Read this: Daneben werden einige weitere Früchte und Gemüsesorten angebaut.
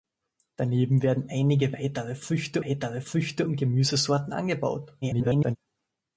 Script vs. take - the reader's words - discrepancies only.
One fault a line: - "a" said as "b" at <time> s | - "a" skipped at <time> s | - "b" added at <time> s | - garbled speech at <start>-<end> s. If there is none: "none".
- "weitere Früchte" added at 2.6 s
- garbled speech at 5.0-5.6 s